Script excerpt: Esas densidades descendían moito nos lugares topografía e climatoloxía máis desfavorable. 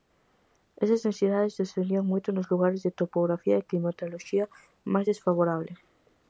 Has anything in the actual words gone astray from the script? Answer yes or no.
yes